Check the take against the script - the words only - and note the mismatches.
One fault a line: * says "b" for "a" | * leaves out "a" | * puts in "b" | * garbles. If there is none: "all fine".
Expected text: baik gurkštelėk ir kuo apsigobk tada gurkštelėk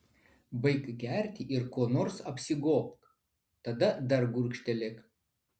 * says "gerti" for "gurkštelėk"
* puts in "nors"
* puts in "dar"